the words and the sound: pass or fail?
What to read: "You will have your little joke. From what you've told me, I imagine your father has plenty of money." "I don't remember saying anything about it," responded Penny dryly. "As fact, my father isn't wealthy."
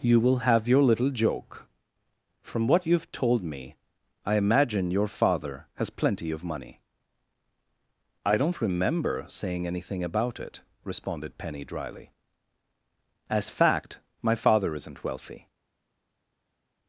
pass